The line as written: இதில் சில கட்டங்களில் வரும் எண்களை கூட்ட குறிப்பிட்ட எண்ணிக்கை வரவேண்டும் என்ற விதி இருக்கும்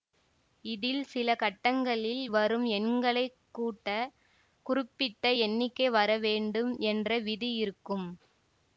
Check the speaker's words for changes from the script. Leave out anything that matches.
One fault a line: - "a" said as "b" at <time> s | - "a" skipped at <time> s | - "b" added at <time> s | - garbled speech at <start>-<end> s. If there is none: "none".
none